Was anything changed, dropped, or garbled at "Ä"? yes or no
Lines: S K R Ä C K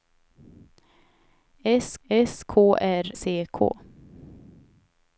yes